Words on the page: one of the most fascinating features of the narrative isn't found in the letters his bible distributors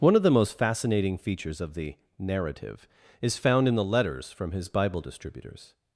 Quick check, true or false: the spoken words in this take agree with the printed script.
false